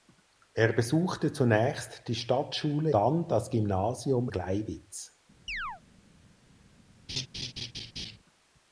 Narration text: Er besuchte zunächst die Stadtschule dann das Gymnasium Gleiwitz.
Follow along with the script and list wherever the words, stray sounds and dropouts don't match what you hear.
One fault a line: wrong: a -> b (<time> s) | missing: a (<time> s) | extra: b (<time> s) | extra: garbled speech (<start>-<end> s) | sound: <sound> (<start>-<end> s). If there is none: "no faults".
sound: chirp (5.5-5.8 s)
sound: laugh (7.1-8.2 s)